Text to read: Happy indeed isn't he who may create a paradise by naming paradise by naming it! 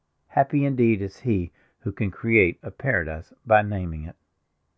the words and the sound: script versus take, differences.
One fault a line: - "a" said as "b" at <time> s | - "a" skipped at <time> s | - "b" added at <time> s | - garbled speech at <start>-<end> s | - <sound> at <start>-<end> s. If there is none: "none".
- "isn't" said as "is" at 1.0 s
- "may" said as "can" at 1.9 s
- "paradise by naming" skipped at 4.0 s